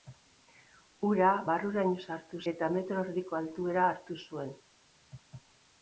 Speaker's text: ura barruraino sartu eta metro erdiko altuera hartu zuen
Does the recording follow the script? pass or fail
pass